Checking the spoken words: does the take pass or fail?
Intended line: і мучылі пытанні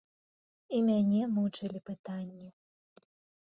fail